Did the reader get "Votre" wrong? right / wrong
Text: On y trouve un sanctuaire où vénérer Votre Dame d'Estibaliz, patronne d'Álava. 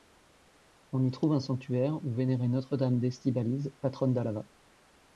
wrong